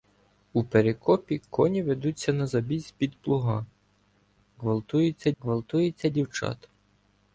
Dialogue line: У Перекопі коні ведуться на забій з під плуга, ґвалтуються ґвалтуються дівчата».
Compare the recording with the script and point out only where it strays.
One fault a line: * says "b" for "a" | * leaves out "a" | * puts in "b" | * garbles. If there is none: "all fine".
all fine